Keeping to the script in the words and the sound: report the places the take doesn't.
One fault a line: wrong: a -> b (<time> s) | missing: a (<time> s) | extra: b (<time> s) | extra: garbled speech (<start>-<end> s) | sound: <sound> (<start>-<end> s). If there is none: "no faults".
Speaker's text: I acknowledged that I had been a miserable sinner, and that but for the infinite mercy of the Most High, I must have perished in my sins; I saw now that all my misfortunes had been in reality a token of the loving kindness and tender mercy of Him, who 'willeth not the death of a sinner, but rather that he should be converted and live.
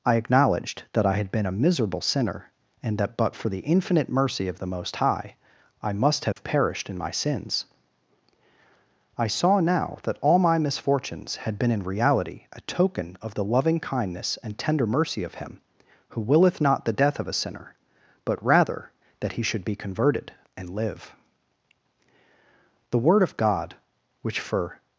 sound: dropout (6.3-6.4 s)
extra: The Word of God which for (22.9 s)